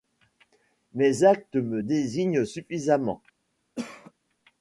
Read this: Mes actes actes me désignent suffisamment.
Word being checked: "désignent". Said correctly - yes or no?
yes